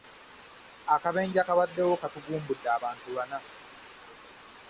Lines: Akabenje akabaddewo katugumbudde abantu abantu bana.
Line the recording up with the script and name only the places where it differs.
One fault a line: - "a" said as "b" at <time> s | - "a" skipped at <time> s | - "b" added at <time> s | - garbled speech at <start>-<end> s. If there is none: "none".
- "abantu" skipped at 3.1 s